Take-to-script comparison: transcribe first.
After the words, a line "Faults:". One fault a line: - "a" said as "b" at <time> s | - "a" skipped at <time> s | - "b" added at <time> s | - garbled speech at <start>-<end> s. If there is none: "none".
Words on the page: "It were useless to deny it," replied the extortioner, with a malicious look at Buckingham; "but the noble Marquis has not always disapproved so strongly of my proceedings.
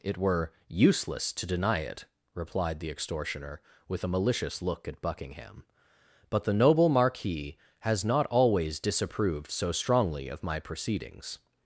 "It were useless to deny it," replied the extortioner, with a malicious look at Buckingham; "but the noble Marquis has not always disapproved so strongly of my proceedings.
Faults:
none